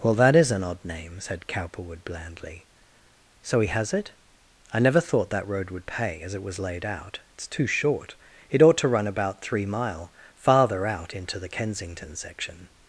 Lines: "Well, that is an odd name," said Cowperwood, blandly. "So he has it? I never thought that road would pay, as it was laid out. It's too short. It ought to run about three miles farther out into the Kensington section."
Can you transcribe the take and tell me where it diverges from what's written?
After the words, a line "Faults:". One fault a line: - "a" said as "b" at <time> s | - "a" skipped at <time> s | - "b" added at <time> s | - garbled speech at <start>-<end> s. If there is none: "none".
"Well, that is an odd name," said Cowperwood, blandly. "So he has it? I never thought that road would pay, as it was laid out. It's too short. It ought to run about three mile farther out into the Kensington section."
Faults:
- "miles" said as "mile" at 9.7 s